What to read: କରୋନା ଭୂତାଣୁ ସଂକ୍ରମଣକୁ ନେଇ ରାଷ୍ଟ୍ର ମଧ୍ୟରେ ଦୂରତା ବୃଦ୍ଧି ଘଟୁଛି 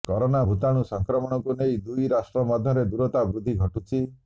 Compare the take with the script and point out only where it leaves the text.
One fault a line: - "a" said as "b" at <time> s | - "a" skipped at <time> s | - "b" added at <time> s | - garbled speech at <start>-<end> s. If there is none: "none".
- "ଦୁଇ" added at 1.8 s